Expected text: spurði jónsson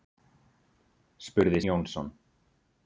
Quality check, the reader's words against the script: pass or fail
pass